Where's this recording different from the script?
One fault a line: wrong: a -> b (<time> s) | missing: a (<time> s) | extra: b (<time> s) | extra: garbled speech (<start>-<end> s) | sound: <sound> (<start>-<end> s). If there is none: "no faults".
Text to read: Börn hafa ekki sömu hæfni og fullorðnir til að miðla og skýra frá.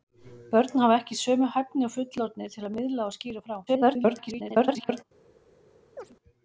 extra: garbled speech (3.7-5.0 s)
sound: chirp (6.0-6.2 s)